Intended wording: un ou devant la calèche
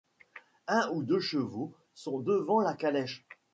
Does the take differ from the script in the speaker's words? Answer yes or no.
yes